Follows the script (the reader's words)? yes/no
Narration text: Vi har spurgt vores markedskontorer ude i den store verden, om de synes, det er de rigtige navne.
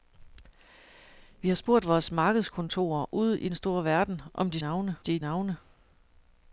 no